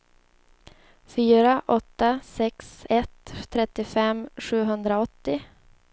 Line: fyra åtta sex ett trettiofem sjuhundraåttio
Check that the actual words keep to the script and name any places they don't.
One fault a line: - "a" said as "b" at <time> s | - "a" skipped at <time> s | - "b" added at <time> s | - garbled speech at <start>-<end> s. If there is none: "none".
none